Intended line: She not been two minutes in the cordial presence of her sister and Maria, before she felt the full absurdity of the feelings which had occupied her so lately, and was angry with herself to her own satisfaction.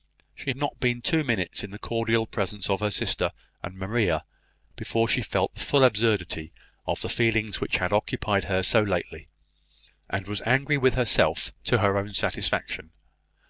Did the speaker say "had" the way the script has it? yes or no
yes